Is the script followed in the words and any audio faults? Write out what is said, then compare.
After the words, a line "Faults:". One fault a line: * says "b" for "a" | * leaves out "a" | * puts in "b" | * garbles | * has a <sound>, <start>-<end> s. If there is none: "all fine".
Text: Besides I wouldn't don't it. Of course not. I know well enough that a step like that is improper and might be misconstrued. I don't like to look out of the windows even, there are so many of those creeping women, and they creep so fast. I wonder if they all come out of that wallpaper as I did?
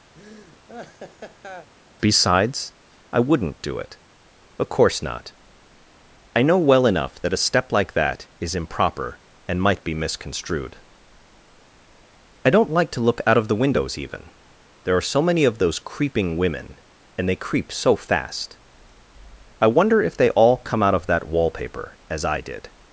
Besides I wouldn't do it. Of course not. I know well enough that a step like that is improper and might be misconstrued. I don't like to look out of the windows even, there are so many of those creeping women, and they creep so fast. I wonder if they all come out of that wallpaper as I did?
Faults:
* has a laugh, 0.1-1.7 s
* says "do" for "don't"